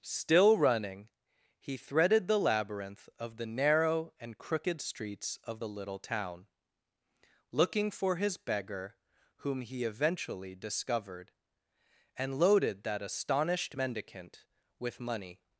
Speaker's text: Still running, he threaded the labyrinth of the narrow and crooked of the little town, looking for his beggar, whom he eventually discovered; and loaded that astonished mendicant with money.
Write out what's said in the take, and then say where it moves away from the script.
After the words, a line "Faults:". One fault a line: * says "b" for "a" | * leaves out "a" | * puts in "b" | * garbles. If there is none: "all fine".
Still running, he threaded the labyrinth of the narrow and crooked streets of the little town, looking for his beggar, whom he eventually discovered; and loaded that astonished mendicant with money.
Faults:
* puts in "streets"